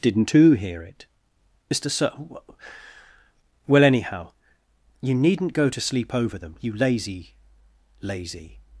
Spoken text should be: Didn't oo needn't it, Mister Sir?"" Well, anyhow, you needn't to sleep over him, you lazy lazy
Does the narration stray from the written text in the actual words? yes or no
yes